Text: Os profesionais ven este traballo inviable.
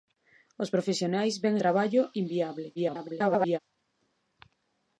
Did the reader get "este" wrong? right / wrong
wrong